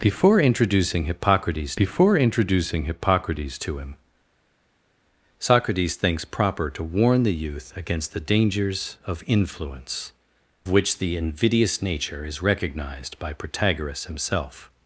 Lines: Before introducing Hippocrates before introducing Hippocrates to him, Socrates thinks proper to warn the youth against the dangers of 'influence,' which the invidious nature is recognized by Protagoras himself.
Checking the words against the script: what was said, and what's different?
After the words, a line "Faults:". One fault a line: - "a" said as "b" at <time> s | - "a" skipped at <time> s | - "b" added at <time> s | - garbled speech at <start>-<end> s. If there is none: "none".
Before introducing Hippocrates before introducing Hippocrates to him, Socrates thinks proper to warn the youth against the dangers of 'influence,' which the invidious nature is recognized by Protagoras himself.
Faults:
none